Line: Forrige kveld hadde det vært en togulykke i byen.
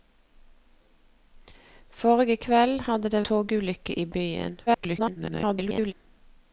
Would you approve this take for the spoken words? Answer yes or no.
no